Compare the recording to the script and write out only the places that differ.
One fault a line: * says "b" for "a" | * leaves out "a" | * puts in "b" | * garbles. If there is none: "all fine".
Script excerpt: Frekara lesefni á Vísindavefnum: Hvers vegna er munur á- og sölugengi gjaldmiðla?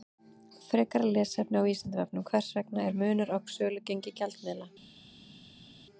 all fine